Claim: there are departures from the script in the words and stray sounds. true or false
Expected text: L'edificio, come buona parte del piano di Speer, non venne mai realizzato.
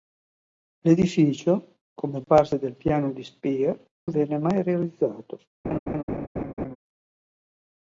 true